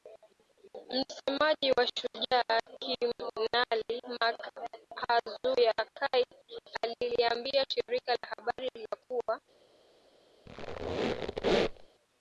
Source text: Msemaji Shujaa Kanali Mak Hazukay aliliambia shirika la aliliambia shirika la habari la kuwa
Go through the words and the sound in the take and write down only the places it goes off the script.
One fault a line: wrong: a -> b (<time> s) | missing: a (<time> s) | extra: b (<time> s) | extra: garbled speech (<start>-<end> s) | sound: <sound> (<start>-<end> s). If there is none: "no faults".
extra: wa (1.7 s)
missing: aliliambia shirika la (8.3 s)
sound: squeak (10.5-11.9 s)